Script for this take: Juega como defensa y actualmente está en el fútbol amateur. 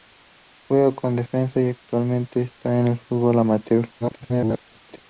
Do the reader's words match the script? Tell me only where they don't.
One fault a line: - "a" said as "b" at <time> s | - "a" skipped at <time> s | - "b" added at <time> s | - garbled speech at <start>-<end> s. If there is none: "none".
- garbled speech at 4.0-5.0 s